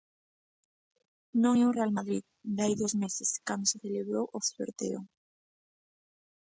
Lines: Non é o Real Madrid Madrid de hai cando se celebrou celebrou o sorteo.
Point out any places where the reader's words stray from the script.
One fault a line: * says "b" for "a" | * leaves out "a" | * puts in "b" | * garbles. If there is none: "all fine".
* leaves out "Madrid"
* puts in "dous meses"
* leaves out "celebrou"